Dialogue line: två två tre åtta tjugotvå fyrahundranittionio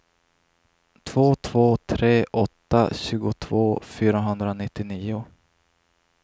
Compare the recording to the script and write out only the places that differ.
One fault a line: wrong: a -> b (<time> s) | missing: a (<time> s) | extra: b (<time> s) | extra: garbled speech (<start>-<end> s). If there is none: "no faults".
no faults